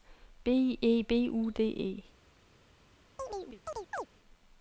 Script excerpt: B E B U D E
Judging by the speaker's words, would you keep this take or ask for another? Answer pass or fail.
pass